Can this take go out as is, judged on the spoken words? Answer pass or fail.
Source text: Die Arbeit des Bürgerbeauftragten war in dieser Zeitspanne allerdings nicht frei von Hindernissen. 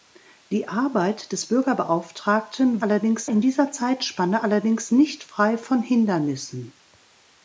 fail